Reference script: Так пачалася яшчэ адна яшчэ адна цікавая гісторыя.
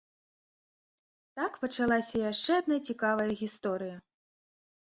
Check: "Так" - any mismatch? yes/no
no